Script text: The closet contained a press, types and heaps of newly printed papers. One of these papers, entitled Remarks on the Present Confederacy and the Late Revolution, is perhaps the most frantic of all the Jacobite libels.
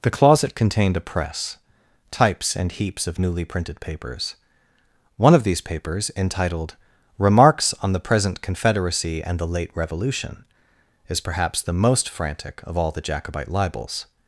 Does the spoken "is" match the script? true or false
true